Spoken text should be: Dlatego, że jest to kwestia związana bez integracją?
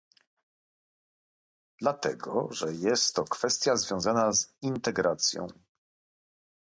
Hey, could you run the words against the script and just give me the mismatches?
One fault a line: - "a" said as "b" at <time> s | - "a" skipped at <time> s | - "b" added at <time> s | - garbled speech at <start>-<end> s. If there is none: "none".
- "bez" said as "z" at 4.3 s